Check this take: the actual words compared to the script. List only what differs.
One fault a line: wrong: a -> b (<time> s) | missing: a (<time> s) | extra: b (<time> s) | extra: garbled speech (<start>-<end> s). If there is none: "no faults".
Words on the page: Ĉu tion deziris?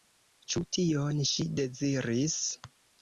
extra: ŝi (1.3 s)